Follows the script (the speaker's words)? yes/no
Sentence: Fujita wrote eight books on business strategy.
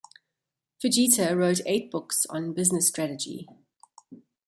yes